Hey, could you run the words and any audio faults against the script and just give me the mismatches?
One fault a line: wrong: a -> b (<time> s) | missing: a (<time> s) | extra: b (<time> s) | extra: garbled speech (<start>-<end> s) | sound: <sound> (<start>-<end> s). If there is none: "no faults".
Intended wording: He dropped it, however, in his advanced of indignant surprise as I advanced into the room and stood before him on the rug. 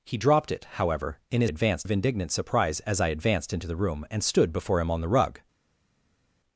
no faults